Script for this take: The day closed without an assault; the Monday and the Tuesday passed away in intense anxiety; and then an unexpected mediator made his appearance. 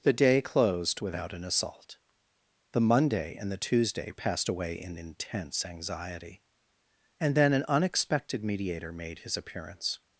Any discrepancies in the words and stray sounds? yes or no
no